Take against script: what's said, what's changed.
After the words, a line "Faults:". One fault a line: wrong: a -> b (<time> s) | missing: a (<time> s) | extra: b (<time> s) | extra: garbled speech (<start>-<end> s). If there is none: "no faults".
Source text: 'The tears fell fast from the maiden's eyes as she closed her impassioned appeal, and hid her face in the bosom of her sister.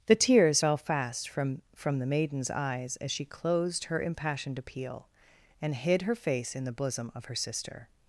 'The tears fell fast from from the maiden's eyes as she closed her impassioned appeal, and hid her face in the bosom of her sister.
Faults:
extra: from (1.7 s)